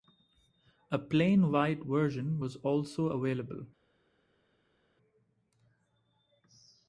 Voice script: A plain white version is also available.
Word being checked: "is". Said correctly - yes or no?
no